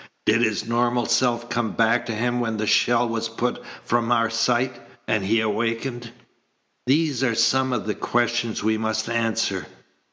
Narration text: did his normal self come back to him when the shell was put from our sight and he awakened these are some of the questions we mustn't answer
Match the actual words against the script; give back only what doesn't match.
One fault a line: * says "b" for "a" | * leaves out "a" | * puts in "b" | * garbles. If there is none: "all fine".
* says "must" for "mustn't"